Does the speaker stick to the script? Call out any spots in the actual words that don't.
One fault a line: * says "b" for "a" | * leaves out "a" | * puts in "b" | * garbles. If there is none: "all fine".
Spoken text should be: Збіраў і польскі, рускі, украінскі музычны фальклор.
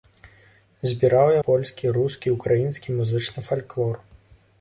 all fine